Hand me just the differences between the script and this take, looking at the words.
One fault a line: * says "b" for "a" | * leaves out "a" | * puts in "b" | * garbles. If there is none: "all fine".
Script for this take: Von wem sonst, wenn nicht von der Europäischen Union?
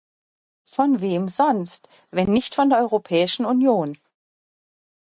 all fine